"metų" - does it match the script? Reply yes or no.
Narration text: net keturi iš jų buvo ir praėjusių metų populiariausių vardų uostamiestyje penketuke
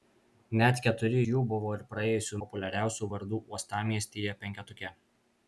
no